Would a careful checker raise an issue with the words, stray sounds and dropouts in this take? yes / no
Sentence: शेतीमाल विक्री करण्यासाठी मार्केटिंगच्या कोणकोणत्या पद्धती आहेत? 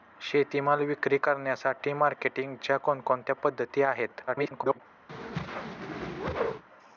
yes